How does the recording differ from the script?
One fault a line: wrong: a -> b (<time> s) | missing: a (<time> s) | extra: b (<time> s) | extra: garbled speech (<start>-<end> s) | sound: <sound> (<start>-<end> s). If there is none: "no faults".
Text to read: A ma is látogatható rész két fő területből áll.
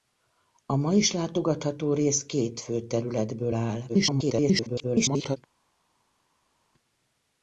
extra: garbled speech (3.9-5.4 s)